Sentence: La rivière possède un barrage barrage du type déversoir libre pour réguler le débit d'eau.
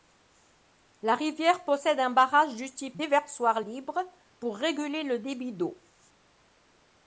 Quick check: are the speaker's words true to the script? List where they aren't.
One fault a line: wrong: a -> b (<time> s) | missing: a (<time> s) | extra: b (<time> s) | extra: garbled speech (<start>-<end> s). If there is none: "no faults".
missing: barrage (2.5 s)